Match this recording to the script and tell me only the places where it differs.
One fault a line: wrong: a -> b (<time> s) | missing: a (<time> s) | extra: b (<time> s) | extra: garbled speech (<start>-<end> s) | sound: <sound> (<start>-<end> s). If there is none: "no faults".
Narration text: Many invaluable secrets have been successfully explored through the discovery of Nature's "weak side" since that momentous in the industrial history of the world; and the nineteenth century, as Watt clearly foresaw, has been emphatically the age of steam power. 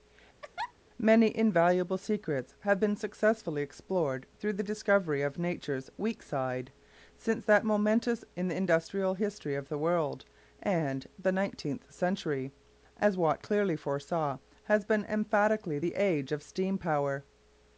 sound: laugh (0.4-0.7 s)